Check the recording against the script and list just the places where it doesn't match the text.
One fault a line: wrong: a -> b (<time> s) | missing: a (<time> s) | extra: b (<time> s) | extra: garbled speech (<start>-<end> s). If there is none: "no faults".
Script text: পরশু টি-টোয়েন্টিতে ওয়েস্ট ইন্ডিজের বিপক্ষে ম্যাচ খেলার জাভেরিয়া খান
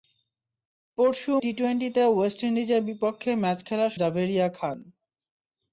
no faults